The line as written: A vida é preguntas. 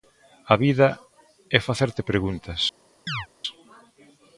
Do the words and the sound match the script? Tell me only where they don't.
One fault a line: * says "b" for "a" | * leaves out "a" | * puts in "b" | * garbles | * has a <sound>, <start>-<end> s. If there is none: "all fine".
* puts in "facerte"
* has a chirp, 3.1-3.3 s